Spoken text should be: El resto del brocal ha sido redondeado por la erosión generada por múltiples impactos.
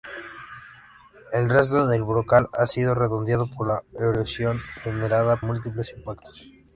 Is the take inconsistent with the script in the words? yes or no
yes